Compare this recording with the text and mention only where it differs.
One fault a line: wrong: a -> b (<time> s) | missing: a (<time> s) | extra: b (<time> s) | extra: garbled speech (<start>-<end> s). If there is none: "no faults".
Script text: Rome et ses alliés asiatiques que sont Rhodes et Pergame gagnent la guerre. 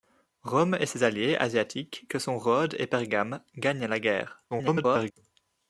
extra: garbled speech (4.5-5.1 s)